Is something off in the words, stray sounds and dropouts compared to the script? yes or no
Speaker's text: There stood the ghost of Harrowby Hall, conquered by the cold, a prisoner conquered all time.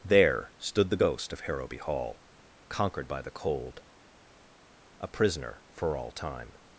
yes